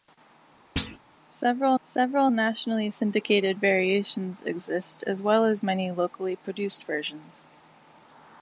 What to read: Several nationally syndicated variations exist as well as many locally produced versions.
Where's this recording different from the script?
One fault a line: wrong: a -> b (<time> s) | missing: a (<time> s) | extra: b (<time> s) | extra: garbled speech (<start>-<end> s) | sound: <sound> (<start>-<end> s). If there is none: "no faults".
sound: thud (0.8-1.0 s)
extra: several (1.8 s)